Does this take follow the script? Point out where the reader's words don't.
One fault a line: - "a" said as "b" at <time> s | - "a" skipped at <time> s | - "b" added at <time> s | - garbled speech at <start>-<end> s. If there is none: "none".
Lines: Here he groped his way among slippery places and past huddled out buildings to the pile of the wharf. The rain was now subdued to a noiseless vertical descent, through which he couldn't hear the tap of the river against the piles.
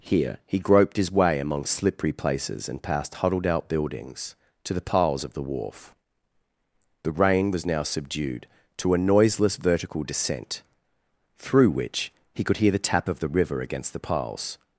- "pile" said as "piles" at 4.8 s
- "couldn't" said as "could" at 12.4 s